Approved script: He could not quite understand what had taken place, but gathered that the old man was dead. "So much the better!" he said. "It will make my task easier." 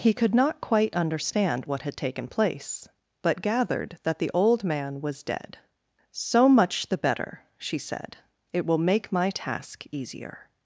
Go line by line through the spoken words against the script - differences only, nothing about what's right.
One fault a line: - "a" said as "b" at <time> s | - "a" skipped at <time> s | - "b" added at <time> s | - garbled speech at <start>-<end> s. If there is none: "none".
- "he" said as "she" at 7.5 s